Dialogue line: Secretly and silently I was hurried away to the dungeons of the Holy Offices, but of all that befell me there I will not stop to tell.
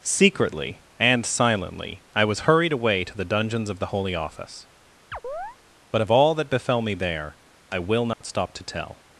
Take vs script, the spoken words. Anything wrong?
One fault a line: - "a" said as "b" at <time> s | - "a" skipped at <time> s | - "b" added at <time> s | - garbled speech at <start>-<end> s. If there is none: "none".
- "Offices" said as "Office" at 4.2 s